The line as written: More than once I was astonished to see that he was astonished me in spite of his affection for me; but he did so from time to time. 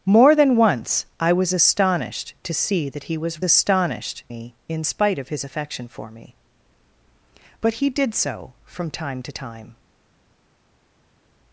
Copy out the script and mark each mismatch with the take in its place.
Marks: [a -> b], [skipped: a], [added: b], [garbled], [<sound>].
More than once I was astonished to see that he was astonished me in spite of his affection for me; but he did so from time to time.